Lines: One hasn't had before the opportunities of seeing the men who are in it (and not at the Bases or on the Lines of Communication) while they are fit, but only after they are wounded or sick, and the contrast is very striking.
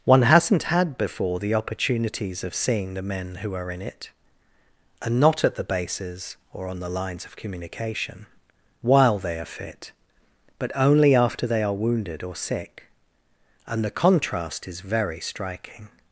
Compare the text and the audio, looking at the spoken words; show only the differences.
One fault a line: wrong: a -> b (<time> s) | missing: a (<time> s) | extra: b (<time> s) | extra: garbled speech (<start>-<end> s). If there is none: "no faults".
no faults